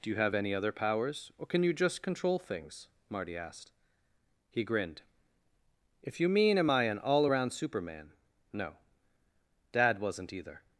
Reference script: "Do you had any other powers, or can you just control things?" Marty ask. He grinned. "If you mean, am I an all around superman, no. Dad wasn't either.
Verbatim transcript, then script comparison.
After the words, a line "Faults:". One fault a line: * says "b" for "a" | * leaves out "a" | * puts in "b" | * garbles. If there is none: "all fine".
"Do you have any other powers, or can you just control things?" Marty asked. He grinned. "If you mean, am I an all around superman, no. Dad wasn't either.
Faults:
* says "have" for "had"
* says "asked" for "ask"